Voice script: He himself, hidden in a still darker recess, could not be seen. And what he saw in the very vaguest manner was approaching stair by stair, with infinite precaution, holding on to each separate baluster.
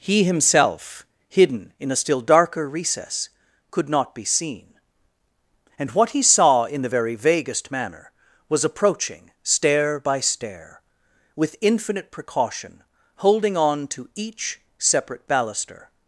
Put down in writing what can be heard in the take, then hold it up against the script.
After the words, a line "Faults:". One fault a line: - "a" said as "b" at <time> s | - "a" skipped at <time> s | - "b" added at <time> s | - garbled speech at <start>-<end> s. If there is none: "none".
He himself, hidden in a still darker recess, could not be seen. And what he saw in the very vaguest manner was approaching stair by stair, with infinite precaution, holding on to each separate baluster.
Faults:
none